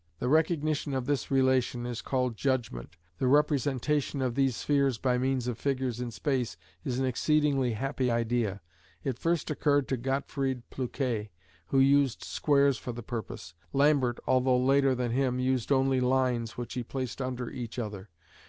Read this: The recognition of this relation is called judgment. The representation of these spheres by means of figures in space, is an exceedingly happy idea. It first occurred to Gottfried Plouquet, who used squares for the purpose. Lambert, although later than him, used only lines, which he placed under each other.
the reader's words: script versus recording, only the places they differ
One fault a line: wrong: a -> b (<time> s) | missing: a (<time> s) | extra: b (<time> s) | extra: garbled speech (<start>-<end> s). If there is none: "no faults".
no faults